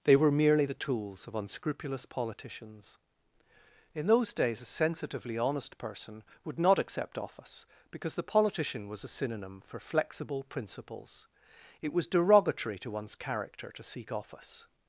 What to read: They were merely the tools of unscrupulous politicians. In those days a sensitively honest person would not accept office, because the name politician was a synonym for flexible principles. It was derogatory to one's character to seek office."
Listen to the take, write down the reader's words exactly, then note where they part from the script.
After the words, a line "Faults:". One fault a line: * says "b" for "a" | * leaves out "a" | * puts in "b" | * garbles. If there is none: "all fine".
They were merely the tools of unscrupulous politicians. In those days a sensitively honest person would not accept office, because the politician was a synonym for flexible principles. It was derogatory to one's character to seek office."
Faults:
* leaves out "name"